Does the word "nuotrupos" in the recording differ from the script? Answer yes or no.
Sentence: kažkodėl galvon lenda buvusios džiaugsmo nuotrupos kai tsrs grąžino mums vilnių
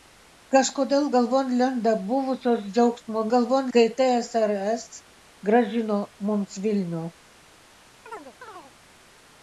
yes